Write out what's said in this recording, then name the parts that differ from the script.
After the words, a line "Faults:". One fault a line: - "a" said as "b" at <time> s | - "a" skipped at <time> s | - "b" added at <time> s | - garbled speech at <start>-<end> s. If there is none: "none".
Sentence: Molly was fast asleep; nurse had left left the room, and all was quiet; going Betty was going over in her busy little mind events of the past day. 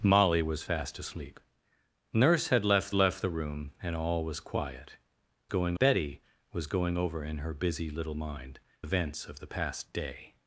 Molly was fast asleep; nurse had left left the room, and all was quiet; going Betty was going over in her busy little mind events of the past day.
Faults:
none